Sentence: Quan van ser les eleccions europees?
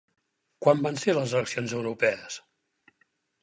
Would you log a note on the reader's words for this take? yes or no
no